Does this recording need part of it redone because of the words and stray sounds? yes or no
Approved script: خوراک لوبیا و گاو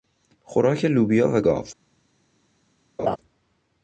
yes